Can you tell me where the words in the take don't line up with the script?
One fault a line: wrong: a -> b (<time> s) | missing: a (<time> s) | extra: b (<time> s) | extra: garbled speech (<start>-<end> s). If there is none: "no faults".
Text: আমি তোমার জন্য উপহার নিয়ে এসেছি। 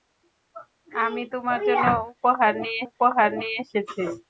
extra: উপহার নিয়ে (2.9 s)